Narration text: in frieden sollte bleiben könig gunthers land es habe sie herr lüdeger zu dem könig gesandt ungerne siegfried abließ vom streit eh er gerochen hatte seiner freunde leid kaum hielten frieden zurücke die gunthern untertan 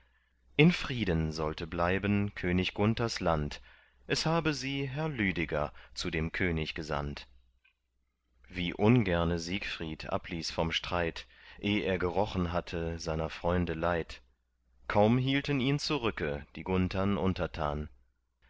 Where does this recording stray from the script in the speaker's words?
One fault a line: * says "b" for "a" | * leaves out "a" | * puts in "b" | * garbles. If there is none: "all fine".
* puts in "wie"
* says "ihn" for "frieden"